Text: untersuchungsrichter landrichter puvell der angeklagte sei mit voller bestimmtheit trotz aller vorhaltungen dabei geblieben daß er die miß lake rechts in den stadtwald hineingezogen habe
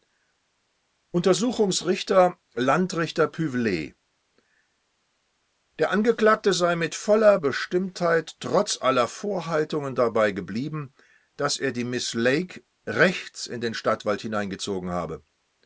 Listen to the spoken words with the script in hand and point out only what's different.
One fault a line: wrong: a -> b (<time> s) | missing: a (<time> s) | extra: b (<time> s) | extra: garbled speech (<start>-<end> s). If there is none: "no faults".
no faults